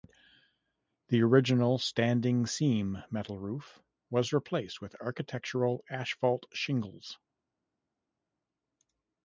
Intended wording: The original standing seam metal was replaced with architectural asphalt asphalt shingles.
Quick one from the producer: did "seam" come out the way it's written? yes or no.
yes